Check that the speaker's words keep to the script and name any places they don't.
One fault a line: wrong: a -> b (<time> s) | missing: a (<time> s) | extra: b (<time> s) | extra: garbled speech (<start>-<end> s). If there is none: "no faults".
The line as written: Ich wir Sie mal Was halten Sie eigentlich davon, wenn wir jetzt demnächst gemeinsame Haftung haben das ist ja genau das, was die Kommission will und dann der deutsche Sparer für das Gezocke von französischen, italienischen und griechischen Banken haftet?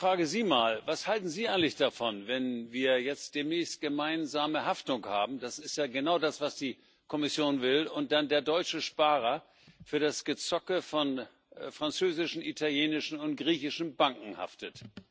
wrong: wir -> frage (0.1 s)